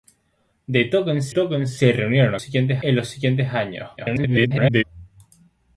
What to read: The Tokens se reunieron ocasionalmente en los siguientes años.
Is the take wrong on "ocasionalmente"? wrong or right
wrong